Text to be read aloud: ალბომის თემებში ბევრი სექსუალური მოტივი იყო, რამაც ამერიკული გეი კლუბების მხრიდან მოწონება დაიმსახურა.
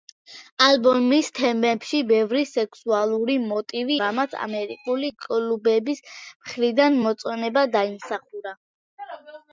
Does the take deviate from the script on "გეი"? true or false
true